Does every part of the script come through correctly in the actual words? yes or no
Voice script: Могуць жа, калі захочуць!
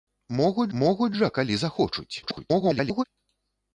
no